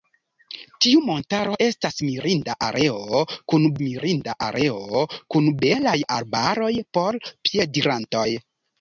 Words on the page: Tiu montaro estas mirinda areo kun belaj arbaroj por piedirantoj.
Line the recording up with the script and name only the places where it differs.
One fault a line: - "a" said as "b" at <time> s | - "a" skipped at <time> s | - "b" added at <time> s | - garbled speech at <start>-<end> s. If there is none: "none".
- "mirinda areo kun" added at 3.9 s